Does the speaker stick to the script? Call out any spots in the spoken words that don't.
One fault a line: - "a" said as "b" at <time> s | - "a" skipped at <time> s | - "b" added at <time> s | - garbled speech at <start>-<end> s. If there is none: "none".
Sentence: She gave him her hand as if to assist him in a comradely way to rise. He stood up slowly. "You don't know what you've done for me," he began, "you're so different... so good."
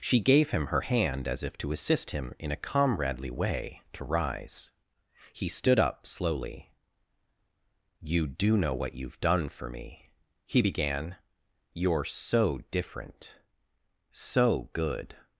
- "don't" said as "do" at 8.3 s